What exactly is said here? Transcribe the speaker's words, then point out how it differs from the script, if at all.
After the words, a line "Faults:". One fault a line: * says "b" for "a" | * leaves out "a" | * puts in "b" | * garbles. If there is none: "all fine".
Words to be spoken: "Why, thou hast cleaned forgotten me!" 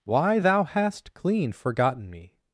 "Why, thou hast clean forgotten me!"
Faults:
* says "clean" for "cleaned"